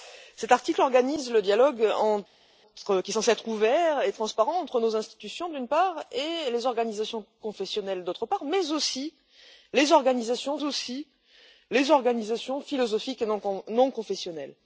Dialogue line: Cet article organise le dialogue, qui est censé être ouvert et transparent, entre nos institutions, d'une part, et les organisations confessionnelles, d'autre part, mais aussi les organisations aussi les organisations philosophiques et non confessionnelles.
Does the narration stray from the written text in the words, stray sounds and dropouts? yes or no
no